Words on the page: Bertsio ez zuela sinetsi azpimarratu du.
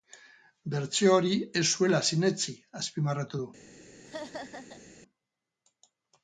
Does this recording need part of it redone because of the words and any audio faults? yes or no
yes